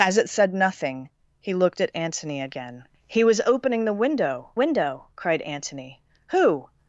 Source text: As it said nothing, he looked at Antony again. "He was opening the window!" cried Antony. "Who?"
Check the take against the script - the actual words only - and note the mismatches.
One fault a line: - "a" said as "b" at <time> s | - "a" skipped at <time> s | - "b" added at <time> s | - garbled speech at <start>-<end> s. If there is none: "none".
- "window" added at 4.6 s